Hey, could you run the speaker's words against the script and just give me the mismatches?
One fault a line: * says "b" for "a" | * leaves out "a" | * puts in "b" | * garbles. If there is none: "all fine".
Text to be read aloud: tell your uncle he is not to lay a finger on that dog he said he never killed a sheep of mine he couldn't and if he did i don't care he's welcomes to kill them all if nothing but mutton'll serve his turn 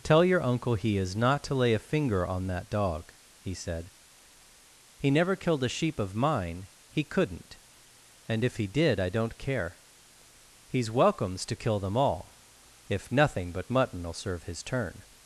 all fine